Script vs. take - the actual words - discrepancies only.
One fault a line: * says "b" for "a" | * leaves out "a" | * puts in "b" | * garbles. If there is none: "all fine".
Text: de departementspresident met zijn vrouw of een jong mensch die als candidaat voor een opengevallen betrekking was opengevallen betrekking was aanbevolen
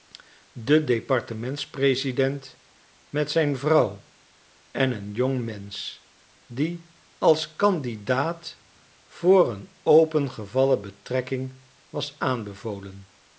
* says "en" for "of"
* leaves out "opengevallen betrekking was"